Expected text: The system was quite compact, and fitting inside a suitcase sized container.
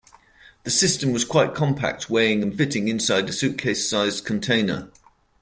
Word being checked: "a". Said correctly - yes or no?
yes